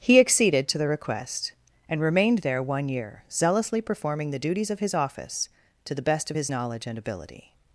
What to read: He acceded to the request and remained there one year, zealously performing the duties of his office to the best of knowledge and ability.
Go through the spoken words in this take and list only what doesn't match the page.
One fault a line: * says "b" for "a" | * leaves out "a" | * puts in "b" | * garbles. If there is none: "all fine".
* puts in "his"